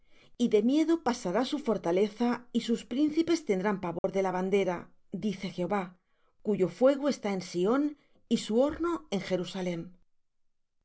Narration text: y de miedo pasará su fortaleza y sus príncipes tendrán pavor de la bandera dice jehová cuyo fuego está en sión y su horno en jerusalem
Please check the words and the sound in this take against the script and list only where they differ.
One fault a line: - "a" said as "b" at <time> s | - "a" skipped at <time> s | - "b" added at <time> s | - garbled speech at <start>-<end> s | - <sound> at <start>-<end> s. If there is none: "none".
- dropout at 4.0-4.0 s